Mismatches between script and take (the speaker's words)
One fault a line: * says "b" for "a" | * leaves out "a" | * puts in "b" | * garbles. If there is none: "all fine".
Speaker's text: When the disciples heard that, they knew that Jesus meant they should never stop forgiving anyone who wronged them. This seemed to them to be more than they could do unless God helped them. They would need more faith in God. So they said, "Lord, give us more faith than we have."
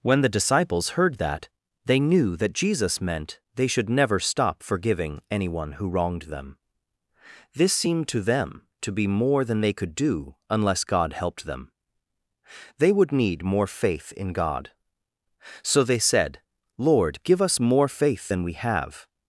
all fine